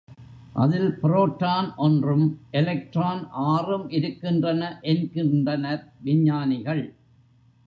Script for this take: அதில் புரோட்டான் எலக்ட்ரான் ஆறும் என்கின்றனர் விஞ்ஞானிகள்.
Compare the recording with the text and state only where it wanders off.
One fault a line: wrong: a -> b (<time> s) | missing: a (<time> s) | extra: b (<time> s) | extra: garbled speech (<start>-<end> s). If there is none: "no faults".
extra: ஒன்றும் (1.8 s)
extra: இருக்கின்றன (3.9 s)